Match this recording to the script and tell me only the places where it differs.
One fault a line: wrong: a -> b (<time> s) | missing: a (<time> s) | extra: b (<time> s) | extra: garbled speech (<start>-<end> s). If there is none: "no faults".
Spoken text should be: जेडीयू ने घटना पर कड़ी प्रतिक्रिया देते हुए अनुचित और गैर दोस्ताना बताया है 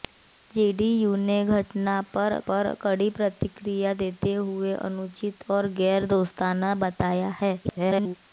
extra: पर (2.5 s)
extra: garbled speech (7.6-8.2 s)